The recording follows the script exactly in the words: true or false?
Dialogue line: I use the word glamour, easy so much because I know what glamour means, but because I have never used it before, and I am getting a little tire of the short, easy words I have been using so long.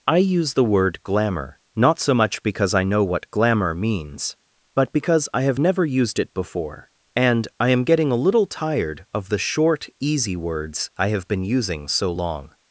false